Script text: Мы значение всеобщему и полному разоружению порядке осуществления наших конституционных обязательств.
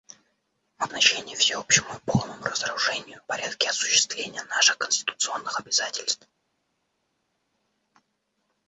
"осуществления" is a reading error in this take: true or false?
false